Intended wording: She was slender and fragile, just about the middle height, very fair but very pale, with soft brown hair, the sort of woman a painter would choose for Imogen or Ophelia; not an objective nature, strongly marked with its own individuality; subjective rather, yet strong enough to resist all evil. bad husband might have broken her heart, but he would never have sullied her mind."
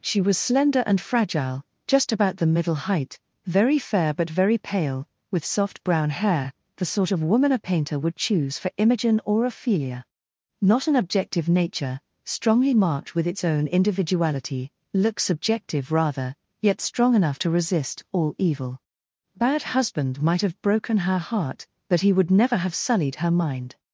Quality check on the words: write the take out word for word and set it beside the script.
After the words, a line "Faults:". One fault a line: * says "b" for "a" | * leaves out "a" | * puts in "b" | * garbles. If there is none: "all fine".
She was slender and fragile, just about the middle height, very fair but very pale, with soft brown hair, the sort of woman a painter would choose for Imogen or Ophelia; not an objective nature, strongly marked with its own individuality; look subjective rather, yet strong enough to resist all evil. bad husband might have broken her heart, but he would never have sullied her mind."
Faults:
* puts in "look"